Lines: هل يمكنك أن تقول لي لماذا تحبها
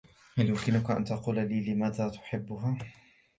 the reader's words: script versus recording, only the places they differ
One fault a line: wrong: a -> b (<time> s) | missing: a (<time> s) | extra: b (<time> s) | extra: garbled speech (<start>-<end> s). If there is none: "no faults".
no faults